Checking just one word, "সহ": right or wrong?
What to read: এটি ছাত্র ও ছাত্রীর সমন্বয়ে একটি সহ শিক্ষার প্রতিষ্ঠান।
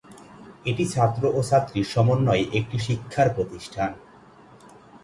wrong